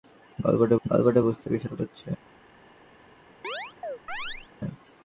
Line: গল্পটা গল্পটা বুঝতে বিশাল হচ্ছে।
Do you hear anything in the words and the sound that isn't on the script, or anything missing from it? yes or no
yes